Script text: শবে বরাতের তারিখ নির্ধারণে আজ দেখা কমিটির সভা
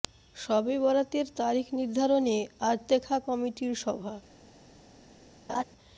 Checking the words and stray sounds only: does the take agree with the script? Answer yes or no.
no